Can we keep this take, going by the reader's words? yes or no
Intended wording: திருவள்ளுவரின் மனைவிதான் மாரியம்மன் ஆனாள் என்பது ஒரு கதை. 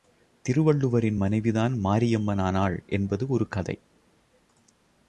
yes